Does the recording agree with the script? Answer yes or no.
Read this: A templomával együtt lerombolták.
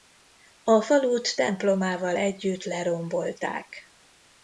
no